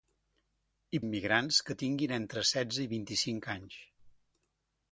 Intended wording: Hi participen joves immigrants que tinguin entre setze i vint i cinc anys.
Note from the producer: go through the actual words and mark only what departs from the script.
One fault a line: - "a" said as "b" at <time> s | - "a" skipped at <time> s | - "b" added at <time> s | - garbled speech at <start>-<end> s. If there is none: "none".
- "participen joves" skipped at 1.0 s